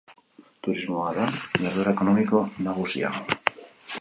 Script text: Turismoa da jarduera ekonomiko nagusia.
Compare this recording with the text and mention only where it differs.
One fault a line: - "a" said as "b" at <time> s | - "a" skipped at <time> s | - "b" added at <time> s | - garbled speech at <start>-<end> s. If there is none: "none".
none